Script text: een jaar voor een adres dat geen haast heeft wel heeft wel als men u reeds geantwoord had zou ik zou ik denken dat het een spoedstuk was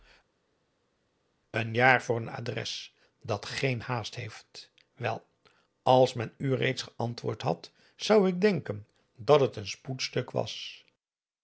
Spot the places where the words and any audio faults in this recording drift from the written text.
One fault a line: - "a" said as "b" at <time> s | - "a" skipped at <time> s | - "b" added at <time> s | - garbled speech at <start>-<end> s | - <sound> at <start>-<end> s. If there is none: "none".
- "heeft wel" skipped at 5.3 s
- "zou ik" skipped at 8.4 s